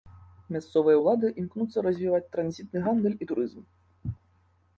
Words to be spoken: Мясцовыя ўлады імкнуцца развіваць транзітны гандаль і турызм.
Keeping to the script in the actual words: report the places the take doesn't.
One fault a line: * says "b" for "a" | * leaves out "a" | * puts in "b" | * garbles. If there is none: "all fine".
all fine